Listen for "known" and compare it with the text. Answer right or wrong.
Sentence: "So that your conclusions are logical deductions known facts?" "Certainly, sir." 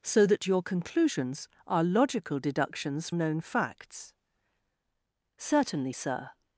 right